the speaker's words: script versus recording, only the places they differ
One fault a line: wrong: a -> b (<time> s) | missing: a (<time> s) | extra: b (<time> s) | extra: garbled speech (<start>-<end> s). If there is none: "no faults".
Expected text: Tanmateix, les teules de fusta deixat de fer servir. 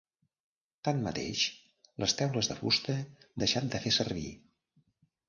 no faults